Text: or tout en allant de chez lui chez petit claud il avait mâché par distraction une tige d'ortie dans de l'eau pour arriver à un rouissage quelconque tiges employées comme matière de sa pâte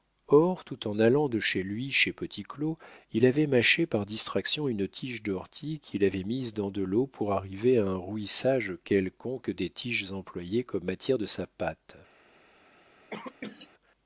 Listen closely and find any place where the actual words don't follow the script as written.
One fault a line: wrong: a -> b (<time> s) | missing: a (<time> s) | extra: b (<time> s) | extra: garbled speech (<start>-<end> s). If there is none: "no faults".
extra: qu'il avait mise (5.8 s)
extra: des (9.5 s)